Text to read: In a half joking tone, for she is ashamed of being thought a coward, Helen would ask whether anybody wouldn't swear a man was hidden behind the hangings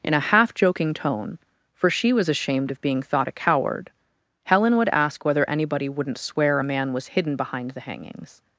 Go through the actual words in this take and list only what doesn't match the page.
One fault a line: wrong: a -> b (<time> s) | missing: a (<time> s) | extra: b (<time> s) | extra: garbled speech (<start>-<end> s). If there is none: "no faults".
wrong: is -> was (2.1 s)